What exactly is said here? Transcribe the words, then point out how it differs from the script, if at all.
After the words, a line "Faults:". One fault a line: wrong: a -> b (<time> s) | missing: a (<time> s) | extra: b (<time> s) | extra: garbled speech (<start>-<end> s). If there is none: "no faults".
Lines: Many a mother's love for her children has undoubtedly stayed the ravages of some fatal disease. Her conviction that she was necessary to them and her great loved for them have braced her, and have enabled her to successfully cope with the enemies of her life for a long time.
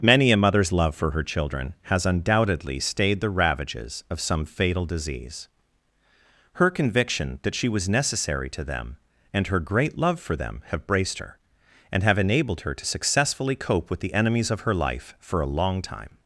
Many a mother's love for her children has undoubtedly stayed the ravages of some fatal disease. Her conviction that she was necessary to them and her great love for them have braced her, and have enabled her to successfully cope with the enemies of her life for a long time.
Faults:
wrong: loved -> love (10.0 s)